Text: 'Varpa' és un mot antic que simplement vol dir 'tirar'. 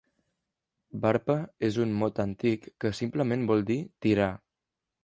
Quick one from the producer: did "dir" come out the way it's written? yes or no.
yes